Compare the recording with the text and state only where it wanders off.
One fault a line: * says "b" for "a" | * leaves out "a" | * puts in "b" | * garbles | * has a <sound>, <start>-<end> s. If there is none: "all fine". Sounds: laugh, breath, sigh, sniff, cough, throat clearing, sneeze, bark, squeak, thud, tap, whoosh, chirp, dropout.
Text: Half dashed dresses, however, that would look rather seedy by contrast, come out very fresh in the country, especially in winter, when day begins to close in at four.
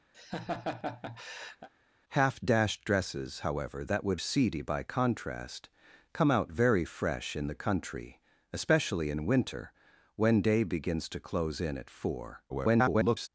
* has a laugh, 0.1-1.7 s
* leaves out "look rather"
* garbles